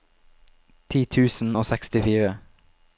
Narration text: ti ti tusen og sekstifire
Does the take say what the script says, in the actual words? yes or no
no